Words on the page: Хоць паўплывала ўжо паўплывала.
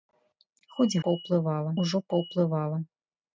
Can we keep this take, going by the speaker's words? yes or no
yes